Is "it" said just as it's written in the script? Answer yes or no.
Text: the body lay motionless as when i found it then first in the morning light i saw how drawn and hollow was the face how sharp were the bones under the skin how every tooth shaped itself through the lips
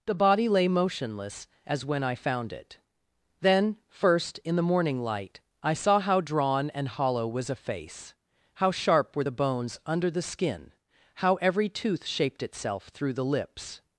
yes